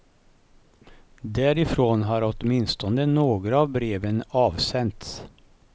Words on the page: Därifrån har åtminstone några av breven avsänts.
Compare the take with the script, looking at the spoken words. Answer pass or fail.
pass